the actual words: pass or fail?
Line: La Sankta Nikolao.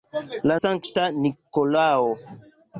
pass